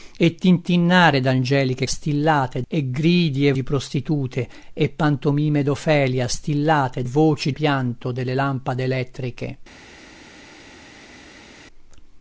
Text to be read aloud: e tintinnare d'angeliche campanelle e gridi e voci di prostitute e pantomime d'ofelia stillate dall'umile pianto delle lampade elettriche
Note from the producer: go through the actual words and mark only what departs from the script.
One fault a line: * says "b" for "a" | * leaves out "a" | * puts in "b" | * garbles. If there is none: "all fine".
* says "stillate" for "campanelle"
* leaves out "voci"
* says "voci" for "dall'umile"